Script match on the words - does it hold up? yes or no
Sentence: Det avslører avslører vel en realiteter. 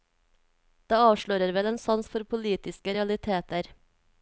no